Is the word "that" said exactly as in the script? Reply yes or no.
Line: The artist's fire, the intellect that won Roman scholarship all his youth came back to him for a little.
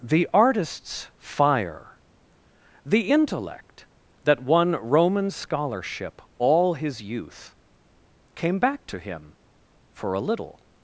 yes